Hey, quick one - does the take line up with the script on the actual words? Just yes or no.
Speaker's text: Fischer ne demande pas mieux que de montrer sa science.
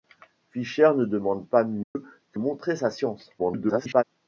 no